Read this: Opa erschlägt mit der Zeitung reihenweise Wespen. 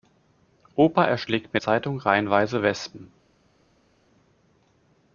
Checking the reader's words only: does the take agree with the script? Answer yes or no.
no